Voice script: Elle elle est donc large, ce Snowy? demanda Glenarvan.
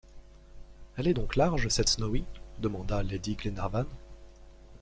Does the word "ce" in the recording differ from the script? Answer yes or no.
yes